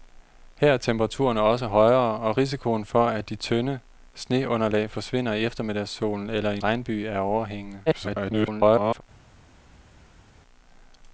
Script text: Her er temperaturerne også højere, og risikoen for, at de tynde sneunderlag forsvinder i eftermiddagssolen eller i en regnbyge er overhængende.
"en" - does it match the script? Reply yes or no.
no